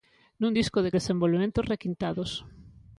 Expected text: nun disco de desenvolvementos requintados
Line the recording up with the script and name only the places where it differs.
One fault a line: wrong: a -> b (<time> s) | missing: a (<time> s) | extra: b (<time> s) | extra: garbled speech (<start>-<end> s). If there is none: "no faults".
no faults